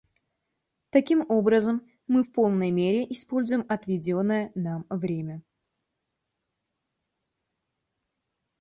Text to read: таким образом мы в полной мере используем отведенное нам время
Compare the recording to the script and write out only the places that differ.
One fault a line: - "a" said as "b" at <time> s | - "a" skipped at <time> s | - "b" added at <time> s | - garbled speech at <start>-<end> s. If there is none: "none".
none